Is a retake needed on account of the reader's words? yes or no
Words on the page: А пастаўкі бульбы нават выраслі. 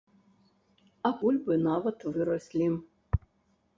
yes